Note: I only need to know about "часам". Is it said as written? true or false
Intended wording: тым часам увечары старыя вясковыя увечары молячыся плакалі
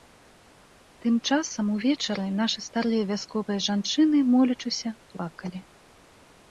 true